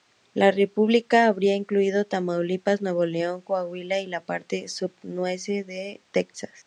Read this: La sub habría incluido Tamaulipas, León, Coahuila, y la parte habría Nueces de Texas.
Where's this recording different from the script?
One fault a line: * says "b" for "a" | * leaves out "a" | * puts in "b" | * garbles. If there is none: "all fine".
* says "república" for "sub"
* puts in "Nuevo"
* says "sub" for "habría"